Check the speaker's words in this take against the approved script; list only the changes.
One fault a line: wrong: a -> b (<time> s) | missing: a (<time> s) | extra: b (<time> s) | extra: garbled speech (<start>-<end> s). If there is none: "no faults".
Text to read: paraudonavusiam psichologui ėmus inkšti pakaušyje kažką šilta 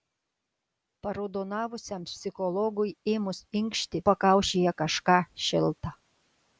no faults